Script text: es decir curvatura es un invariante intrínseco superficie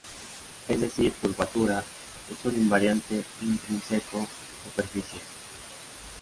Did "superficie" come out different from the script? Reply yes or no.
no